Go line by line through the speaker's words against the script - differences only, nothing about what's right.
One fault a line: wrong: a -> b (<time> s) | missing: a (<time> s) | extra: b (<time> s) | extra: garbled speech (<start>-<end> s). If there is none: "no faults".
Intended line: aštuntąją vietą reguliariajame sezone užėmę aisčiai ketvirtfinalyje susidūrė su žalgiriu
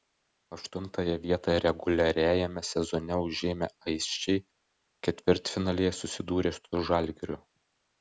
no faults